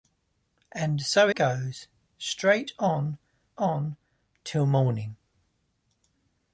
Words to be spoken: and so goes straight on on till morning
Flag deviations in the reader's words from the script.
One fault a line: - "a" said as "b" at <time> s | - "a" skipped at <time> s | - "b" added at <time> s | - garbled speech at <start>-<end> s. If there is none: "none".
none